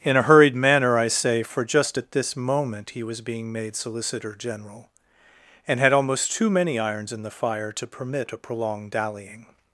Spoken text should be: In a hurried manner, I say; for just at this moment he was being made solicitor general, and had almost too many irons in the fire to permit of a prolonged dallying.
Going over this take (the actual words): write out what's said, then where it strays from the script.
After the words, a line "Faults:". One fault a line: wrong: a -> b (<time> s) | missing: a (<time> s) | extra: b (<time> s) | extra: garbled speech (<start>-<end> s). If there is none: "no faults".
In a hurried manner, I say; for just at this moment he was being made solicitor general, and had almost too many irons in the fire to permit a prolonged dallying.
Faults:
missing: of (8.3 s)